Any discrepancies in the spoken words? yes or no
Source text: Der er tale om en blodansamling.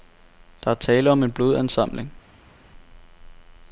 no